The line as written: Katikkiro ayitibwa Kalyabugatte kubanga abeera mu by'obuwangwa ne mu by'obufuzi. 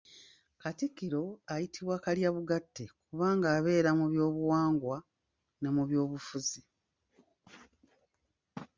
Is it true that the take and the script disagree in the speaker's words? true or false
false